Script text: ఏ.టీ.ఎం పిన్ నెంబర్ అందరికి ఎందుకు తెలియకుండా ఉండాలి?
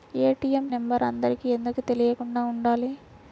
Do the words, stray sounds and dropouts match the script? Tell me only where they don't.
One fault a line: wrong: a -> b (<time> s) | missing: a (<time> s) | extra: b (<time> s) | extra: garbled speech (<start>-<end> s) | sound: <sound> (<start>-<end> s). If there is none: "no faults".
missing: పిన్ (0.7 s)